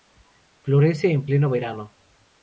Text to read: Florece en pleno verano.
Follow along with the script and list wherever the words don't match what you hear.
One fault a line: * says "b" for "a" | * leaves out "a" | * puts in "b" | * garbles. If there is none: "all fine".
all fine